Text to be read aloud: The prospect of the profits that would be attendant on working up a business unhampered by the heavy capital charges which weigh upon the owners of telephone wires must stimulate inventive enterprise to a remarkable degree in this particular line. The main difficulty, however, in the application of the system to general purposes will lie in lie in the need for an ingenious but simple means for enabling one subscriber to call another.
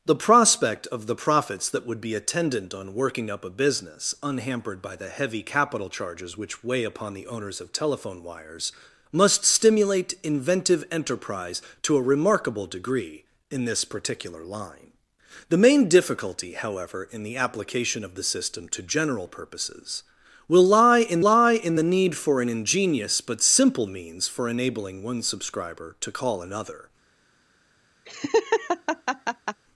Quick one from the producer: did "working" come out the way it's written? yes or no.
yes